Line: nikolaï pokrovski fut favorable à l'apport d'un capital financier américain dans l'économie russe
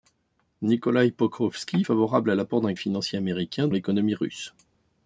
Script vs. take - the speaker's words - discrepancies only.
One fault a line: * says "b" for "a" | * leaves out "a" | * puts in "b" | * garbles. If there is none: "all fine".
* leaves out "fut"
* leaves out "capital"
* leaves out "dans"